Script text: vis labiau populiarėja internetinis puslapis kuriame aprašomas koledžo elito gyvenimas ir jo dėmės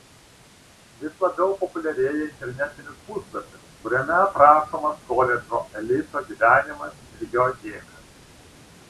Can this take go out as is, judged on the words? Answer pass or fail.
pass